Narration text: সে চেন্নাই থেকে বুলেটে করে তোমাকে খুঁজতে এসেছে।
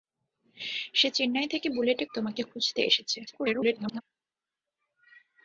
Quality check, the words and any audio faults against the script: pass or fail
fail